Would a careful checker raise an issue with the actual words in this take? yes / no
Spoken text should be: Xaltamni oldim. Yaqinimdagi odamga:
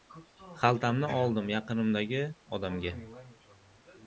no